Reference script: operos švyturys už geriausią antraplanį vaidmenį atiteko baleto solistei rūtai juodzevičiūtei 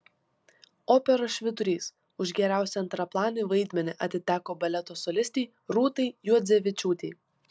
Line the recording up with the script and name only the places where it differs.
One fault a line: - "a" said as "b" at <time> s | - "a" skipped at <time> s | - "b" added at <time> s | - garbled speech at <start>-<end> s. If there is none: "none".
none